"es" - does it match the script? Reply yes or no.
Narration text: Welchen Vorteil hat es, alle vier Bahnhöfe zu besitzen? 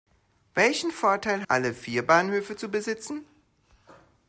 no